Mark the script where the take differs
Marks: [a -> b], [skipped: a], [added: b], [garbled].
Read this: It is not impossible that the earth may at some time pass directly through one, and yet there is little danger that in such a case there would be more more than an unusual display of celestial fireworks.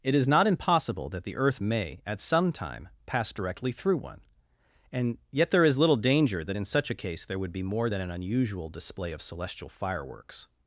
It is not impossible that the earth may at some time pass directly through one, and yet there is little danger that in such a case there would be more [skipped: more] than an unusual display of celestial fireworks.